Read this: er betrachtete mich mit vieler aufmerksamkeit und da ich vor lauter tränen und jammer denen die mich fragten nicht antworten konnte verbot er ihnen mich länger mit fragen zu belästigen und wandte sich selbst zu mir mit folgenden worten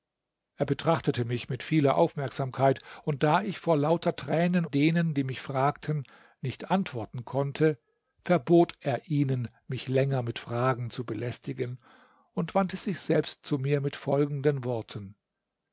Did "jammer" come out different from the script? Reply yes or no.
yes